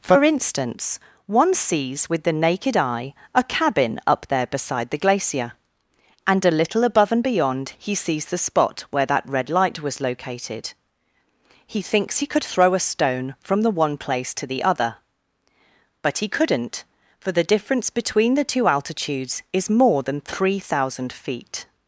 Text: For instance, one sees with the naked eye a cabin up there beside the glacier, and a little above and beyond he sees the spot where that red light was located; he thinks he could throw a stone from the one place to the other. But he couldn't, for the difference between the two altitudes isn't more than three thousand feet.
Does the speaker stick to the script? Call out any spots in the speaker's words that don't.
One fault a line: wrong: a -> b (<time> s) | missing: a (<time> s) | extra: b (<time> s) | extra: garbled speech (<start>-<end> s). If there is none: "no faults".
wrong: isn't -> is (19.5 s)